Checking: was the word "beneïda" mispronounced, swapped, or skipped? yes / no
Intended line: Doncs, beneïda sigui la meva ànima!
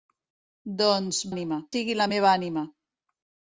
yes